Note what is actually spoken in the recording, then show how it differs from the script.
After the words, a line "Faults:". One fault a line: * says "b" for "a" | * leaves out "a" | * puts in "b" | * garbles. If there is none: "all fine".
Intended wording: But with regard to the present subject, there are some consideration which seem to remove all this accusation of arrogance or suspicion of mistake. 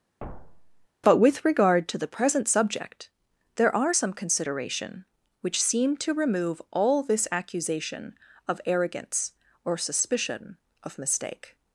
But with regard to the present subject, there are some consideration which seem to remove all this accusation of arrogance or suspicion of mistake.
Faults:
all fine